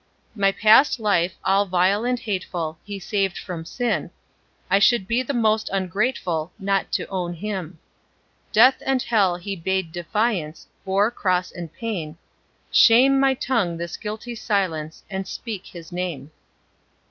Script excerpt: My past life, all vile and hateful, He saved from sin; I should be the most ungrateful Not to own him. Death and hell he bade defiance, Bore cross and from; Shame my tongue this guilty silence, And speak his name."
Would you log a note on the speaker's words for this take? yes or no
yes